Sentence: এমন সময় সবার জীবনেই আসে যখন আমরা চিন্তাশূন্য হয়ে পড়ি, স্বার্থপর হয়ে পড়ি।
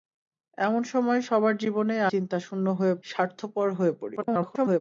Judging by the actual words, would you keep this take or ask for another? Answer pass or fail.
fail